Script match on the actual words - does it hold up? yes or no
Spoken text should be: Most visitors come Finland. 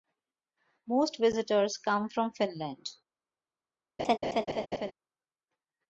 no